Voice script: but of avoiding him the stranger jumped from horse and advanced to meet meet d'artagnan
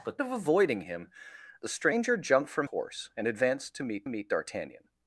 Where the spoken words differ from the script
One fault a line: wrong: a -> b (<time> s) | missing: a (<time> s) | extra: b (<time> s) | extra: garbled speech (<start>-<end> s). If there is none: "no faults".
no faults